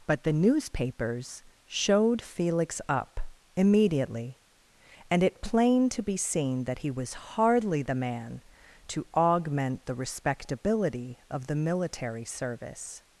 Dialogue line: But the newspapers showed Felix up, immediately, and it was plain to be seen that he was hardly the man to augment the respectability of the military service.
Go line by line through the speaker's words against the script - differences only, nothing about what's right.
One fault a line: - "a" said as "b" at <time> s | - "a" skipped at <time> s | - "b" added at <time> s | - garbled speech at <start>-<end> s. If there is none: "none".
- "was" skipped at 5.4 s